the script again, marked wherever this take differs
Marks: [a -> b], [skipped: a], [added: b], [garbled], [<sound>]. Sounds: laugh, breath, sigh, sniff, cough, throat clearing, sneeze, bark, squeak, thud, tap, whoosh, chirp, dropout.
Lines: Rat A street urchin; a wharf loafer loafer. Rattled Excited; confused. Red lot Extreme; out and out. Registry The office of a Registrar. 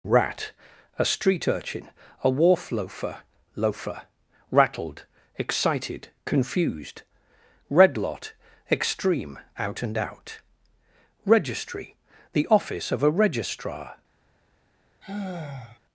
Rat A street urchin; a wharf loafer loafer. Rattled Excited; confused. Red lot Extreme; out and out. Registry The office of a Registrar. [sigh]